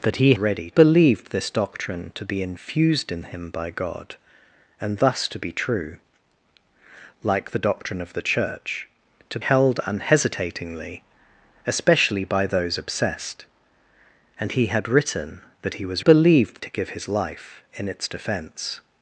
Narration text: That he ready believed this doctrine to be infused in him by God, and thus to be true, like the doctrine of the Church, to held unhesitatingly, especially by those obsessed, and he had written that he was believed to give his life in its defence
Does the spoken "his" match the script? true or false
true